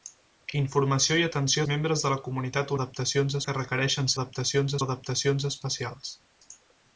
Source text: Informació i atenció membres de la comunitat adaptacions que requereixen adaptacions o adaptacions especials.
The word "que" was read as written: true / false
true